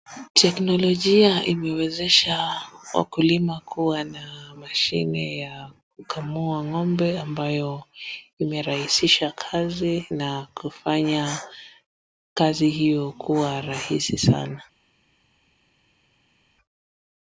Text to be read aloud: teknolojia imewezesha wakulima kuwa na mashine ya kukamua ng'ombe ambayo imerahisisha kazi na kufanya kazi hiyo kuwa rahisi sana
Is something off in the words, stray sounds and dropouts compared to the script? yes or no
no